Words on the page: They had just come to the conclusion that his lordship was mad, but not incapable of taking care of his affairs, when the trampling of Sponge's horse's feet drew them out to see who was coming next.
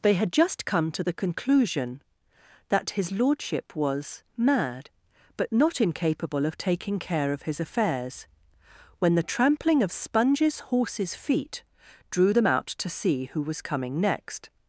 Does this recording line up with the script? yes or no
yes